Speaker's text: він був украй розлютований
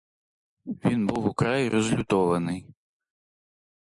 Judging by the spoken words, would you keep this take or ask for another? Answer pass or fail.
pass